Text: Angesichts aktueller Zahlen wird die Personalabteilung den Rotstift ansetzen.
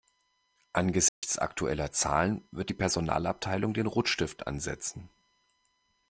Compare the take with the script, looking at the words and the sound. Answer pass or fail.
fail